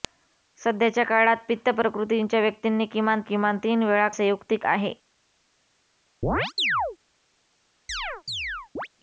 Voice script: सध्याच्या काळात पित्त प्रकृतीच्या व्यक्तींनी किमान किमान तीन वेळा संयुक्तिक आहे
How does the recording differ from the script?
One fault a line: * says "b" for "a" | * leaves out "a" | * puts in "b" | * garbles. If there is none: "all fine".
all fine